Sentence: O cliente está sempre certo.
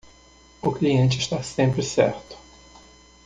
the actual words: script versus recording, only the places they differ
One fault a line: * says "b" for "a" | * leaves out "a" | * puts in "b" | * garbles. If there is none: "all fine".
all fine